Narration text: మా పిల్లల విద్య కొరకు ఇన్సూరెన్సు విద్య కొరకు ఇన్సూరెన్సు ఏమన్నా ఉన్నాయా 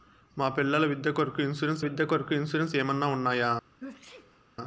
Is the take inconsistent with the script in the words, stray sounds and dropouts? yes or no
yes